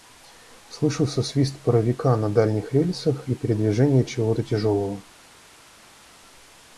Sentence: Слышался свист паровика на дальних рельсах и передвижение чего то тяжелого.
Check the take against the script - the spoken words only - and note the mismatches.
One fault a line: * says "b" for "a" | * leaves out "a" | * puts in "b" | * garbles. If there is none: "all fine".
all fine